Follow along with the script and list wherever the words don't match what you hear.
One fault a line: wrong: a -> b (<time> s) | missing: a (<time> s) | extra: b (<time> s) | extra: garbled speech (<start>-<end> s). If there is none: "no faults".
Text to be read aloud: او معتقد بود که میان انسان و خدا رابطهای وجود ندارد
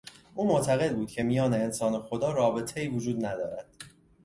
no faults